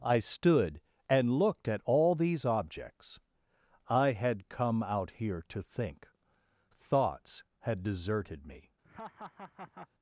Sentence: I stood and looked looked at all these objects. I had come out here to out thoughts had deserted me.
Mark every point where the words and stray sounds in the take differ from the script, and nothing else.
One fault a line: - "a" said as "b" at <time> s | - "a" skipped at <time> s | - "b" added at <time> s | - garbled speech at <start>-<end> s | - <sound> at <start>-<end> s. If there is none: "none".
- "looked" skipped at 1.7 s
- "out" said as "think" at 5.6 s
- laugh at 8.8-9.9 s